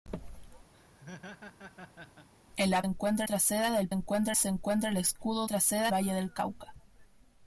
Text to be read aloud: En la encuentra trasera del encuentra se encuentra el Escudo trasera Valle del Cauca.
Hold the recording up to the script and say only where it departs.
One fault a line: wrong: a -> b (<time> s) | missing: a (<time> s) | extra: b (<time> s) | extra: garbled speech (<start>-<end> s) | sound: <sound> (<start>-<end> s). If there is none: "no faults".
sound: laugh (0.7-2.3 s)